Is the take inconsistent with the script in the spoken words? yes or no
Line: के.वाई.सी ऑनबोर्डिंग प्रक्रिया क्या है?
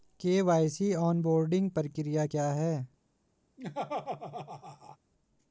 no